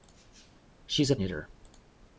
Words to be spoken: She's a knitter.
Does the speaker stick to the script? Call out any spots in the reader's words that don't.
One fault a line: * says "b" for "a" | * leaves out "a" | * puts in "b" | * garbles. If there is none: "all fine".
all fine